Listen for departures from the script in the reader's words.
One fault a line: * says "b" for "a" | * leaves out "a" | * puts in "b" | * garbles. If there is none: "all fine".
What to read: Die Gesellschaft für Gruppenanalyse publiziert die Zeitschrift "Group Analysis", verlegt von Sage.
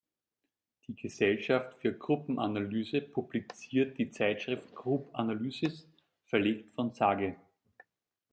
all fine